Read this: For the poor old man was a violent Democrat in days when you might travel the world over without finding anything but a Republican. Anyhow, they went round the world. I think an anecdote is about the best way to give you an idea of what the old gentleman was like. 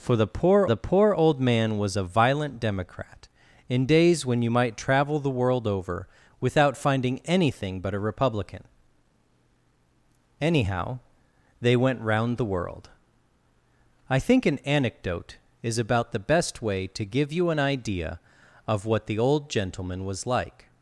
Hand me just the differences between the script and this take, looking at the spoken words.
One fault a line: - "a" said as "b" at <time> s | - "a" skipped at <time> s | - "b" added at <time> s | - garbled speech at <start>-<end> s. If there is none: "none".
- "the poor" added at 0.7 s